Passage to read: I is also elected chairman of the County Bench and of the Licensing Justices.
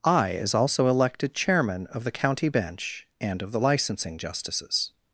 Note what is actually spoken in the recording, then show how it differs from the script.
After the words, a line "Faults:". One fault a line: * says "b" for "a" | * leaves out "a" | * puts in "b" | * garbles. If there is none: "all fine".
I is also elected chairman of the County Bench and of the Licensing Justices.
Faults:
all fine